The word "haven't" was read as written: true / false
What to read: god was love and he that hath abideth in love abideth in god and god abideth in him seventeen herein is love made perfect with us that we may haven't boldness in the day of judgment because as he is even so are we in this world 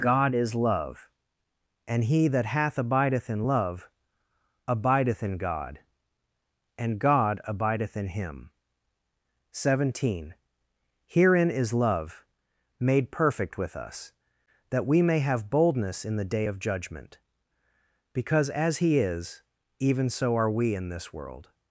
false